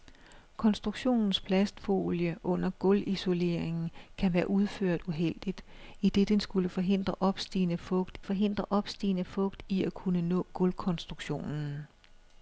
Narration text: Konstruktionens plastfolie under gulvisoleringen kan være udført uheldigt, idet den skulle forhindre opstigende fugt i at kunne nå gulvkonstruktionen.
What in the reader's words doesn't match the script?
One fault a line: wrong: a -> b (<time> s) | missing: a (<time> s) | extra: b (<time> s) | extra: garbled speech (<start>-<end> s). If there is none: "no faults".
extra: forhindre opstigende fugt (8.2 s)